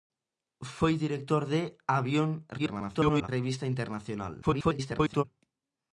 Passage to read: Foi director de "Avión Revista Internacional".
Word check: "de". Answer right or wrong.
right